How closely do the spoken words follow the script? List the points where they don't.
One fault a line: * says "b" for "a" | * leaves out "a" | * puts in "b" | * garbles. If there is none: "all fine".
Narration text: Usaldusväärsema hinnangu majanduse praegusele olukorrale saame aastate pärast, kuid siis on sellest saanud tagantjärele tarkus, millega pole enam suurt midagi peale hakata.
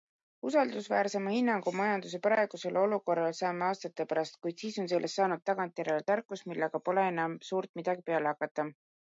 all fine